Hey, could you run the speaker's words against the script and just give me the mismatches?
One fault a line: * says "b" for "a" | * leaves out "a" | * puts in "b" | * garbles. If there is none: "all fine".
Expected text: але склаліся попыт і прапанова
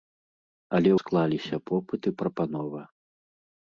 all fine